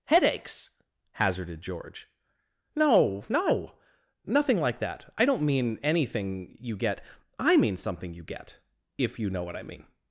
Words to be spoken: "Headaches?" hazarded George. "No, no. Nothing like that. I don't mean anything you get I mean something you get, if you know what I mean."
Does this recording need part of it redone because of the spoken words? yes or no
no